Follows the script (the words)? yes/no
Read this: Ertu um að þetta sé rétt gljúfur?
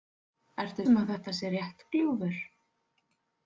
yes